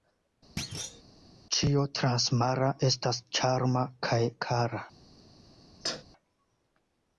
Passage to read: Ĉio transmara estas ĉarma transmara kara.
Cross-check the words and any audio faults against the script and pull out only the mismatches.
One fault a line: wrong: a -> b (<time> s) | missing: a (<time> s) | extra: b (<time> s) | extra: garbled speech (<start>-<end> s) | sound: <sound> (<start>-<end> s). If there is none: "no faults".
sound: thud (0.6-1.0 s)
wrong: transmara -> kaj (4.1 s)
sound: sneeze (5.8-6.0 s)